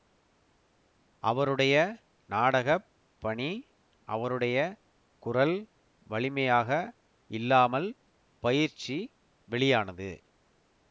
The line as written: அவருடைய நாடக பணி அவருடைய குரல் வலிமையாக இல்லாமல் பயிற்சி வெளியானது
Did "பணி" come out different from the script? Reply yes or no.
no